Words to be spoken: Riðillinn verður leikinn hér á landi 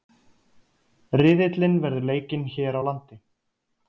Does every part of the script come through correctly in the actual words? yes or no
yes